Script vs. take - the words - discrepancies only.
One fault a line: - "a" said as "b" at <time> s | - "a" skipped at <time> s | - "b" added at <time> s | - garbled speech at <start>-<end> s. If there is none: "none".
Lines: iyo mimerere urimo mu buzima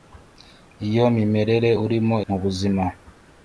none